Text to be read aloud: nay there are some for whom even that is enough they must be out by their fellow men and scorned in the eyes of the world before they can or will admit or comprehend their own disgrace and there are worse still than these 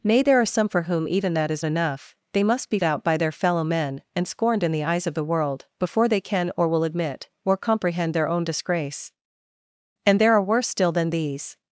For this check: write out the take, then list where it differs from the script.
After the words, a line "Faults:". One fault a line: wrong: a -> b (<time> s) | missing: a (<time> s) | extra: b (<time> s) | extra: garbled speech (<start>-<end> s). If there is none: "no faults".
nay there are some for whom even that is enough they must be out by their fellow men and scorned in the eyes of the world before they can or will admit or comprehend their own disgrace and there are worse still than these
Faults:
no faults